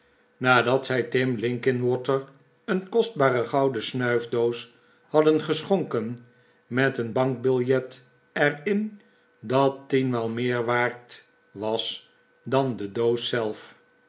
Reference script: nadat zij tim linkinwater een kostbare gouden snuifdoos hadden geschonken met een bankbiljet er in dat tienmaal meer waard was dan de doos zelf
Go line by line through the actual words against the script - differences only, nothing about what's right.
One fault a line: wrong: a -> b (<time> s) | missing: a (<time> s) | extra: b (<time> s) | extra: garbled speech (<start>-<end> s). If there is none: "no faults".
no faults